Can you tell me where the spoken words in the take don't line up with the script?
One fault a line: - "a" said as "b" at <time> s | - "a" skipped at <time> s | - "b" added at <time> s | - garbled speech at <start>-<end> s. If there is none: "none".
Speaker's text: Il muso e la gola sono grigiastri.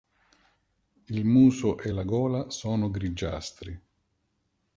none